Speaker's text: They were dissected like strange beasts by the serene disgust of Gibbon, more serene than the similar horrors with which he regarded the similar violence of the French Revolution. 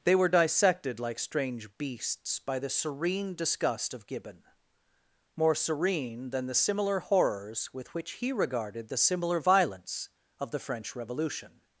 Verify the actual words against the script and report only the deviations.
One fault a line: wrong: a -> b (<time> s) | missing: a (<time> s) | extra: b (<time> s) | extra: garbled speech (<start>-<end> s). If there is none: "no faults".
no faults